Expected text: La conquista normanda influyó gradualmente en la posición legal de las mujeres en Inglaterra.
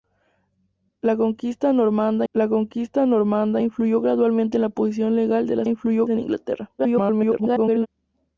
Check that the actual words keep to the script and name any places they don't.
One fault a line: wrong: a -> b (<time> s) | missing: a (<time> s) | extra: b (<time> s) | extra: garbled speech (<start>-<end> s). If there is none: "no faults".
extra: la conquista normanda (2.3 s)
wrong: mujeres -> influyó (5.6 s)
extra: garbled speech (6.8-7.9 s)